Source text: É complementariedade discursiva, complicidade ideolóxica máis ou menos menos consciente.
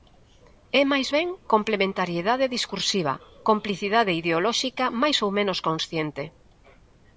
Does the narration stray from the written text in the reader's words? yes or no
yes